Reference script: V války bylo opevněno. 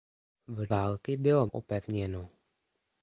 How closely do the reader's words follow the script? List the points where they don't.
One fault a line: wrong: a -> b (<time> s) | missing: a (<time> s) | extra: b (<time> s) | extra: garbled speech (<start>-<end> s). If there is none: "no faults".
no faults